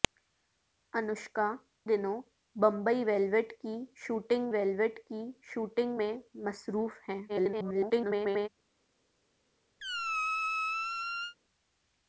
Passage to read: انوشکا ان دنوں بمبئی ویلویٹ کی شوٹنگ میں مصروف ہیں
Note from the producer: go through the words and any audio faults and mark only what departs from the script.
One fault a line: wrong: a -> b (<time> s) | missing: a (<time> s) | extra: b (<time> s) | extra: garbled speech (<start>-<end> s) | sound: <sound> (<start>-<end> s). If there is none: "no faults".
missing: ان (1.4 s)
extra: ویلویٹ کی شوٹنگ (4.5 s)
extra: garbled speech (7.3-8.5 s)
sound: squeak (9.8-11.4 s)